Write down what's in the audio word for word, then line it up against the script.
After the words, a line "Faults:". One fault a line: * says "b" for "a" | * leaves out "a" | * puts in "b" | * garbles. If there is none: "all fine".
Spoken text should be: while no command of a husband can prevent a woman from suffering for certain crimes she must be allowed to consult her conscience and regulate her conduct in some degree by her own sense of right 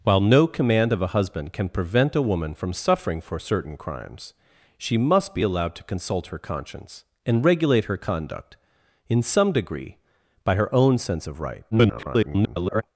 while no command of a husband can prevent a woman from suffering for certain crimes she must be allowed to consult her conscience and regulate her conduct in some degree by her own sense of right [garbled]
Faults:
* garbles